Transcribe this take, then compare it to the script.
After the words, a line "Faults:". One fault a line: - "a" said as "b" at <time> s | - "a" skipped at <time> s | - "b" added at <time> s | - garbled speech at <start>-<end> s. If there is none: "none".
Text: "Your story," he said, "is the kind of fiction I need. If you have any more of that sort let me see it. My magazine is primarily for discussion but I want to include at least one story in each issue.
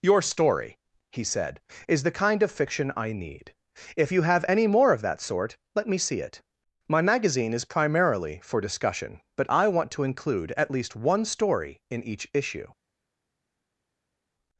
"Your story," he said, "is the kind of fiction I need. If you have any more of that sort let me see it. My magazine is primarily for discussion but I want to include at least one story in each issue.
Faults:
none